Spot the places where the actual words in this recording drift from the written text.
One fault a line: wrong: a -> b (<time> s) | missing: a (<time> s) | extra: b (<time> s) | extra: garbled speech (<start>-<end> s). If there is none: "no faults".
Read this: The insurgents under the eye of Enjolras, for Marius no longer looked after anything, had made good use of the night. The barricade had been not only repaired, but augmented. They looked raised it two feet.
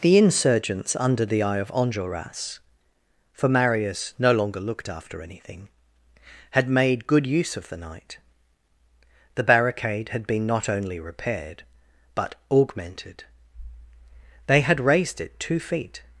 wrong: looked -> had (14.6 s)